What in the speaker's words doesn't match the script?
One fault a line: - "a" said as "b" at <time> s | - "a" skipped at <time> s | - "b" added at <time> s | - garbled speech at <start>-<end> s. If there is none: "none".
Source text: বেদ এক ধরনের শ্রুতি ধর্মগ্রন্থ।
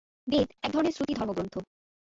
none